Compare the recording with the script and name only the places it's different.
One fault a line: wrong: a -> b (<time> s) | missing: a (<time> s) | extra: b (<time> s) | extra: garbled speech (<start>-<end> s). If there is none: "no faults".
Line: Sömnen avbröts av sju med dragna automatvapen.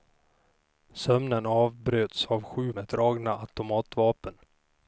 no faults